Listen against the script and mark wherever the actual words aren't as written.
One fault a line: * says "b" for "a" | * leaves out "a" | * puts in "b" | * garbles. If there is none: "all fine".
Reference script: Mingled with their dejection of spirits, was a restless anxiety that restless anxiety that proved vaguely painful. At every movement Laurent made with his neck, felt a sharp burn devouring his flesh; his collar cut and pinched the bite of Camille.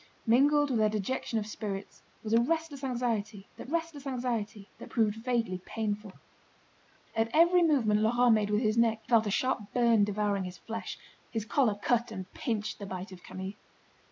all fine